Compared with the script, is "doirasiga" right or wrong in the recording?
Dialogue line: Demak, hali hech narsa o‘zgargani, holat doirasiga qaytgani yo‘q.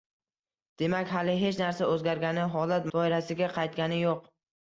right